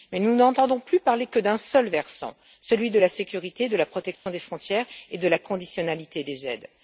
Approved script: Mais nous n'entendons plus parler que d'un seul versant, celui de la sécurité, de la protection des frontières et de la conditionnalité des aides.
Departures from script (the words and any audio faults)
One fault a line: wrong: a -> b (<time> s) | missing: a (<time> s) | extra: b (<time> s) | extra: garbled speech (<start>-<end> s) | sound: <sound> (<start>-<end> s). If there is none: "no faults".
sound: dropout (4.2-4.3 s)